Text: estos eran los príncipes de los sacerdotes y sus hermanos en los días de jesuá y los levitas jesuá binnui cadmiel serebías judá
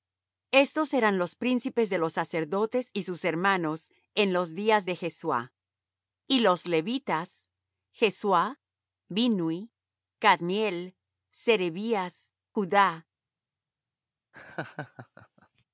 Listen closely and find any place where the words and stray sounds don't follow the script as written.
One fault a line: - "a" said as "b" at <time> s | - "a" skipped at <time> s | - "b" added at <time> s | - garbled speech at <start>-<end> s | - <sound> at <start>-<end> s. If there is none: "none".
- laugh at 14.3-15.7 s